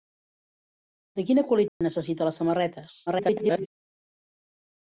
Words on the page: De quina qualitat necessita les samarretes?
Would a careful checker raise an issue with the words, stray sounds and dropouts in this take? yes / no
yes